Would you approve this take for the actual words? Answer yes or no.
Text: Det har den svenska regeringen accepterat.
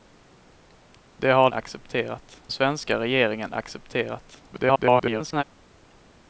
no